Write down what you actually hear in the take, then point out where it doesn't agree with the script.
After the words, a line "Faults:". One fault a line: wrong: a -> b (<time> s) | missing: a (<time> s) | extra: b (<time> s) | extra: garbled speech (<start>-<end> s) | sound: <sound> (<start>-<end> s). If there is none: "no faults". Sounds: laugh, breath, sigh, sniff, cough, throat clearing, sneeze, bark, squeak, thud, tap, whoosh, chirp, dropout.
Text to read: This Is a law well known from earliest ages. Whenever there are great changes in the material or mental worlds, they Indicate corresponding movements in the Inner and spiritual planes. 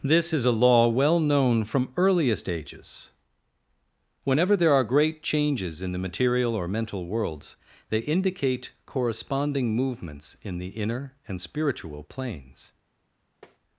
This Is a law well known from earliest ages. Whenever there are great changes in the material or mental worlds, they Indicate corresponding movements in the Inner and spiritual planes.
Faults:
sound: tap (13.4-13.6 s)